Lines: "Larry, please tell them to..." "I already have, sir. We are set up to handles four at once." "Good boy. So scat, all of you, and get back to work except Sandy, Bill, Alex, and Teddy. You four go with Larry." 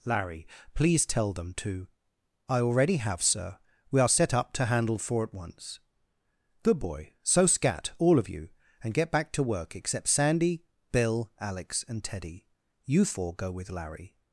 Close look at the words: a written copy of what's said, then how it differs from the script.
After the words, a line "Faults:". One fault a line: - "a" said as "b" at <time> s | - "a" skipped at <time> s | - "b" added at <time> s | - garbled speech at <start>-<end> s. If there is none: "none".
"Larry, please tell them to..." "I already have, sir. We are set up to handle four at once." "Good boy. So scat, all of you, and get back to work except Sandy, Bill, Alex, and Teddy. You four go with Larry."
Faults:
- "handles" said as "handle" at 4.7 s